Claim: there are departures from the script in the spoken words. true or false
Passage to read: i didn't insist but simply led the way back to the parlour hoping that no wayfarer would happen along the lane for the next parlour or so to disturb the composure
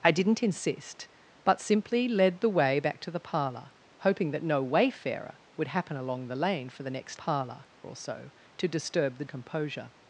false